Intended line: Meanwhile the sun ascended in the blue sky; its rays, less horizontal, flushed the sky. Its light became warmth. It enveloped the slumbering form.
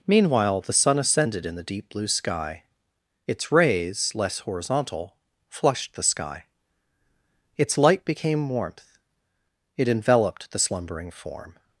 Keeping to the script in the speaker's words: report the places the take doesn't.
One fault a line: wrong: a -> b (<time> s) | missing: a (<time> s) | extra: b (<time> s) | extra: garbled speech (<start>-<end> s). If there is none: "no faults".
extra: deep (1.6 s)